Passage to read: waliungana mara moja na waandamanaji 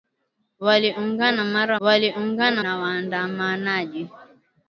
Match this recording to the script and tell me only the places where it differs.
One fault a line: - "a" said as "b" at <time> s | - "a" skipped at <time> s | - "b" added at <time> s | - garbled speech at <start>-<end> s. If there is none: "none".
- "moja" said as "waliungana" at 1.8 s